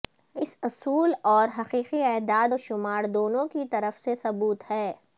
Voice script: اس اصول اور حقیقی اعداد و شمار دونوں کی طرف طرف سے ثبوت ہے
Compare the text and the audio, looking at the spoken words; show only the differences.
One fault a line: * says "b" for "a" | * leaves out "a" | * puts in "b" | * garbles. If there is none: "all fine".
* leaves out "طرف"